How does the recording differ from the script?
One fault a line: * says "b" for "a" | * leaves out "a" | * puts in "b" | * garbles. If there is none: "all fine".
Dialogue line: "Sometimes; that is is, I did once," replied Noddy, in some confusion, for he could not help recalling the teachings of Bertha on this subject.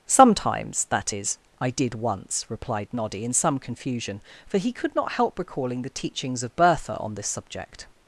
* leaves out "is"